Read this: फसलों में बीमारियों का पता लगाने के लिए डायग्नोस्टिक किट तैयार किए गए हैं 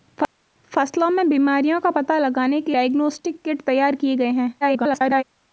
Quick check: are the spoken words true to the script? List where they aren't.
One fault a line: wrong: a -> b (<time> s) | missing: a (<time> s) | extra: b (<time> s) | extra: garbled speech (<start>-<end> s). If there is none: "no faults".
missing: लिए (2.8 s)
extra: garbled speech (4.6-5.2 s)